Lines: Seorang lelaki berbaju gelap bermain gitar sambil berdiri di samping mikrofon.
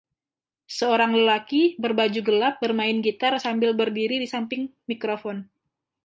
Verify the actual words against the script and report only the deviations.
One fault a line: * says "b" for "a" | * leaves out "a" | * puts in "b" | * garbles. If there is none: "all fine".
all fine